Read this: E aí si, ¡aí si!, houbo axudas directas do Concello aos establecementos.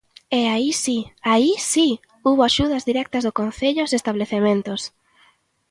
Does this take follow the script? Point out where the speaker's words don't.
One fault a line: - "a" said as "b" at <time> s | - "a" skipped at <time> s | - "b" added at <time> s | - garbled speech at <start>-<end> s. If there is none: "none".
none